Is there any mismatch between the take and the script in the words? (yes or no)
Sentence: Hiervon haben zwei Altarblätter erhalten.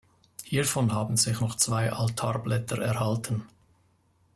yes